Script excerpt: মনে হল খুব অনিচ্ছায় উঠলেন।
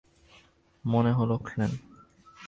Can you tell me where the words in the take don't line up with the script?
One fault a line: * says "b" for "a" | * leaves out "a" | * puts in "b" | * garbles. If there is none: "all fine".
* leaves out "খুব অনিচ্ছায়"